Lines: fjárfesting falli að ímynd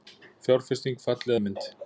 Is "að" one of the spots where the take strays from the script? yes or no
yes